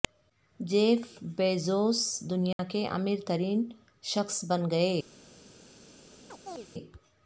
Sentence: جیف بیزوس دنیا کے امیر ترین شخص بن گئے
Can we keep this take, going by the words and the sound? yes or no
no